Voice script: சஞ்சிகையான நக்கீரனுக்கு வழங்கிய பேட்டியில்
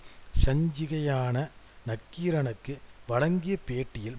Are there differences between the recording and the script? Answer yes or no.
no